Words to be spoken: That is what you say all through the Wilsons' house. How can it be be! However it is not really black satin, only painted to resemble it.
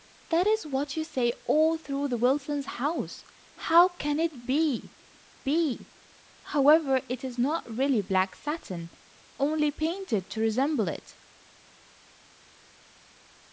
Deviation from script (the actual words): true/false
false